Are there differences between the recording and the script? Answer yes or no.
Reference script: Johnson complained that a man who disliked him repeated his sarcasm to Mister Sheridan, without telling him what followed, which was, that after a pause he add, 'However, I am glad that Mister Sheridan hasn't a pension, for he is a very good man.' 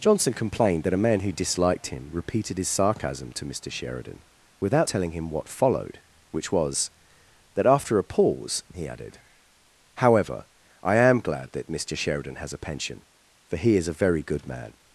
yes